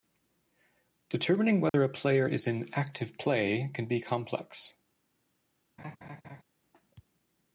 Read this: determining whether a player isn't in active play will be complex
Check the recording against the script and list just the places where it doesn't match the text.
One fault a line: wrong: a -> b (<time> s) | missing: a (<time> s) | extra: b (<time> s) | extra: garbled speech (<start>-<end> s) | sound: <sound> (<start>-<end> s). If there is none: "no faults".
sound: dropout (1.7-1.7 s)
wrong: isn't -> is (2.3 s)
wrong: will -> can (3.7 s)
sound: laugh (5.8-6.4 s)